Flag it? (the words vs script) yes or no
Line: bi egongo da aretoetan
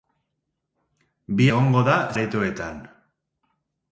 no